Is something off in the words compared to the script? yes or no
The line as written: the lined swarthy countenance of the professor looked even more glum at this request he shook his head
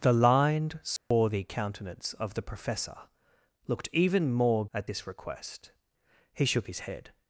yes